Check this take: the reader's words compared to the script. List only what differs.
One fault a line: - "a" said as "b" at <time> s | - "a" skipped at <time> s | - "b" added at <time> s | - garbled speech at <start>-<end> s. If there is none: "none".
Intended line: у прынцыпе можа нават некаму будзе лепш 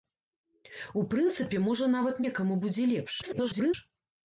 - garbled speech at 3.2-3.7 s